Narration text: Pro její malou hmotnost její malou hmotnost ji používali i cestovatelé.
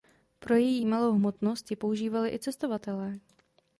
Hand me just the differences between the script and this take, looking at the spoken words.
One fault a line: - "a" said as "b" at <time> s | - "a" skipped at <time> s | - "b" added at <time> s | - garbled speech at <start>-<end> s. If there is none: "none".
- "její malou hmotnost" skipped at 1.7 s